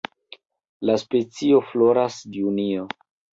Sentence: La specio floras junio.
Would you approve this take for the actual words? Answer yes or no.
yes